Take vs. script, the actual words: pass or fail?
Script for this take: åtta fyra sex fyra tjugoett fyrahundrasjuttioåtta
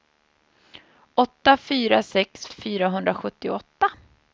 fail